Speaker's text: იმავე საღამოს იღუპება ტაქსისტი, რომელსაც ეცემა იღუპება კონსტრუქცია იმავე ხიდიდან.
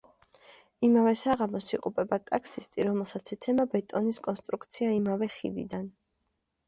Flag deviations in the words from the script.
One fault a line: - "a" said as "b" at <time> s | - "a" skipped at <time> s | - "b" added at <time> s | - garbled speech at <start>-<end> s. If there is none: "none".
- "იღუპება" said as "ბეტონის" at 3.8 s